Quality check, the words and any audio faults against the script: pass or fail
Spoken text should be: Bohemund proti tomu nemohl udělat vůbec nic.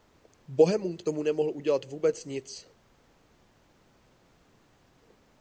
fail